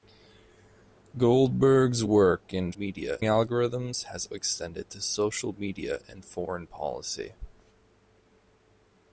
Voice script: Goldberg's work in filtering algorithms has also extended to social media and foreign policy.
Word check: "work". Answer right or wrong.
right